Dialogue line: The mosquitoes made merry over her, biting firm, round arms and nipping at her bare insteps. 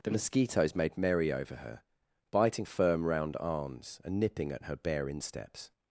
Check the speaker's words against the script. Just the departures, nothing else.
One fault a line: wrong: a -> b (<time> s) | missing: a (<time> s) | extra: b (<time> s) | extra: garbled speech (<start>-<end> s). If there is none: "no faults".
no faults